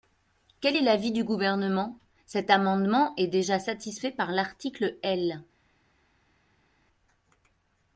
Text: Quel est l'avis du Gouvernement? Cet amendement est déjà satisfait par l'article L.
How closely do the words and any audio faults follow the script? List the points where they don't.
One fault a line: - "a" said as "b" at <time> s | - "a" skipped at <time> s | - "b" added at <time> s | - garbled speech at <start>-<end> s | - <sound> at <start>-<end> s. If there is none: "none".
none